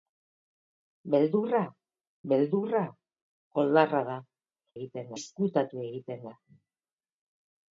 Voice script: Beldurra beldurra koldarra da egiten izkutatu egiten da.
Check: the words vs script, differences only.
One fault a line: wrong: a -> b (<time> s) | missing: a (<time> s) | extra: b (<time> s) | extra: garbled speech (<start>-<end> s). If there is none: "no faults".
no faults